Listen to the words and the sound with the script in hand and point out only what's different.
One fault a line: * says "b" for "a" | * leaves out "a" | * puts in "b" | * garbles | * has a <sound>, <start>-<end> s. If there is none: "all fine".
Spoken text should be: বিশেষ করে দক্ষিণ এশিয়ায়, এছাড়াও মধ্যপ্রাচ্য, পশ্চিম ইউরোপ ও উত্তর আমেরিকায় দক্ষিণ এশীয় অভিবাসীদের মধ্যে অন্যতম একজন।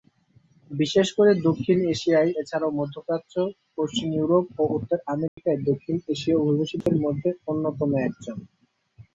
* has a dropout, 5.3-5.4 s
* has a dropout, 6.8-6.9 s